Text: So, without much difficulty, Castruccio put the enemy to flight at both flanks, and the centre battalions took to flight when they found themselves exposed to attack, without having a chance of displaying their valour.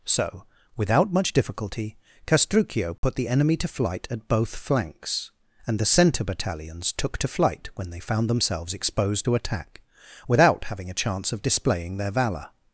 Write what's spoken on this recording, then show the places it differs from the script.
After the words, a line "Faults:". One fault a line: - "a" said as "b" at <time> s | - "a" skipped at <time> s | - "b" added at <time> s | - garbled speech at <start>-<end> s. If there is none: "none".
So, without much difficulty, Castruccio put the enemy to flight at both flanks, and the centre battalions took to flight when they found themselves exposed to attack, without having a chance of displaying their valour.
Faults:
none